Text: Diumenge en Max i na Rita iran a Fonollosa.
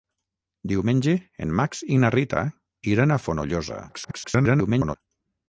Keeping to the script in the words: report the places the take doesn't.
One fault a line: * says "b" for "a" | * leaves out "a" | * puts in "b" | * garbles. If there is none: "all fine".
* garbles